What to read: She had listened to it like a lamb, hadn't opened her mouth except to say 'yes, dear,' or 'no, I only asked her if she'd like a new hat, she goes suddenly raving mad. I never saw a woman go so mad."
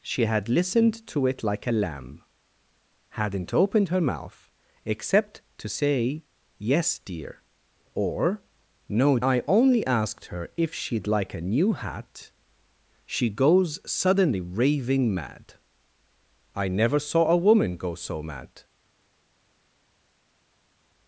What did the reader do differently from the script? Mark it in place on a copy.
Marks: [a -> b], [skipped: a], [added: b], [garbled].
She had listened to it like a lamb, hadn't opened her mouth except to say 'yes, dear,' or 'no, I only asked her if she'd like a new hat, she goes suddenly raving mad. I never saw a woman go so mad."